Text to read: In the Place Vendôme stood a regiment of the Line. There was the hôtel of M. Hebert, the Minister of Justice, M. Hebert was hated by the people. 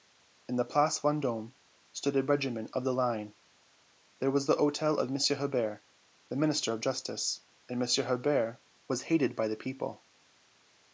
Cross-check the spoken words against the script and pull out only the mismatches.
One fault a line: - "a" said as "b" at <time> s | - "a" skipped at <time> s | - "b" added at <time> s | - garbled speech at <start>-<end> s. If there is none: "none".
- "and" added at 7.7 s